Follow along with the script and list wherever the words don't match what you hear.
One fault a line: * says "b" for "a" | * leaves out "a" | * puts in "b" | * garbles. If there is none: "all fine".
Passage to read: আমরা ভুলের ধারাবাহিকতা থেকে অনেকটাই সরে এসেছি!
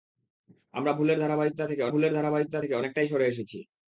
* puts in "ভুলের ধারাবাহিকতা থেকে"